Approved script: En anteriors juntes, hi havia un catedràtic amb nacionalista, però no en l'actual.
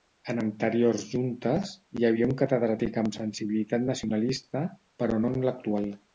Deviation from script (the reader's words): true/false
true